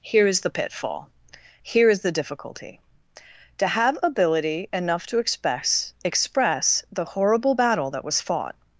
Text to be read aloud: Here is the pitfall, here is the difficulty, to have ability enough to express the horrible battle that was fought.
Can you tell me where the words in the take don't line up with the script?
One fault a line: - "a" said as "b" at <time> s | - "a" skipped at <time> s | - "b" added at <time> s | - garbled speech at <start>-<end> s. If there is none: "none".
- "express" added at 6.0 s